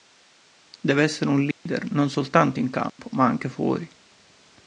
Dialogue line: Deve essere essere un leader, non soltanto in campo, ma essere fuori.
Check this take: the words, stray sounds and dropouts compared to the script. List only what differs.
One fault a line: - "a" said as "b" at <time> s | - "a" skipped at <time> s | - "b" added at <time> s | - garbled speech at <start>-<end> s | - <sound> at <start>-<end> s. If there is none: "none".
- "essere" skipped at 1.3 s
- dropout at 1.5-1.7 s
- dropout at 2.9-3.0 s
- "essere" said as "anche" at 3.3 s